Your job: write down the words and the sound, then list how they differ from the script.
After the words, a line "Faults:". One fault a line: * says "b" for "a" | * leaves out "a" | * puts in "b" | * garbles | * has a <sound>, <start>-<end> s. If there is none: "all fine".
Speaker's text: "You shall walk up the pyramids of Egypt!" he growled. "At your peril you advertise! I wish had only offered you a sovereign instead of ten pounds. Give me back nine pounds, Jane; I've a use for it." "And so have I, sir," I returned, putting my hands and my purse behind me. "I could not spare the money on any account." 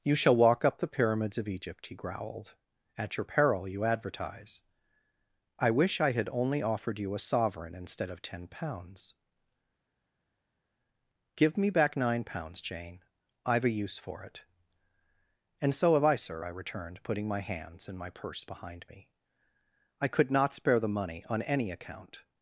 "You shall walk up the pyramids of Egypt!" he growled. "At your peril you advertise! I wish I had only offered you a sovereign instead of ten pounds. Give me back nine pounds, Jane; I've a use for it." "And so have I, sir," I returned, putting my hands and my purse behind me. "I could not spare the money on any account."
Faults:
* puts in "I"